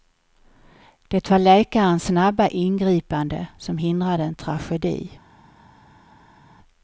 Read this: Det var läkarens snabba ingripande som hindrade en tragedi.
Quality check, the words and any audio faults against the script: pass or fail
pass